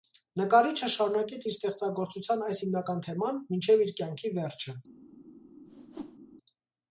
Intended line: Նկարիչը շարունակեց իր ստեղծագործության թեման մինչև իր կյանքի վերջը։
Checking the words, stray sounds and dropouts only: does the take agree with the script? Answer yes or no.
no